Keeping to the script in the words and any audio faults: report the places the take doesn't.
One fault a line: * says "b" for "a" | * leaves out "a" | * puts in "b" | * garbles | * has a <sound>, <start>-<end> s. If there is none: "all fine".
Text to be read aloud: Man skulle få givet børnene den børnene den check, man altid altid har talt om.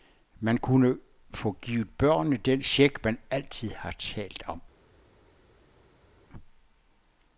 * says "kunne" for "skulle"
* leaves out "børnene den"
* leaves out "altid"